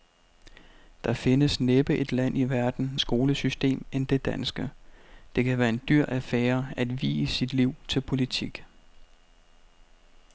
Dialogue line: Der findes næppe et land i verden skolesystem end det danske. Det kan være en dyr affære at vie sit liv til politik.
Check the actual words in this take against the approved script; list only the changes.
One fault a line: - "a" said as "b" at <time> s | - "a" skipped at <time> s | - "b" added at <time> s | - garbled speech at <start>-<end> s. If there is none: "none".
none